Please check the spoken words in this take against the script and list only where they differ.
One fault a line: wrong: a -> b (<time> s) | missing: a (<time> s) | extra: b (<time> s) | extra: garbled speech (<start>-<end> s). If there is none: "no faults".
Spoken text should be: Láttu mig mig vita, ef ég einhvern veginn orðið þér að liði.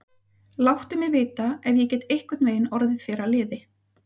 missing: mig (1.1 s)
extra: get (1.9 s)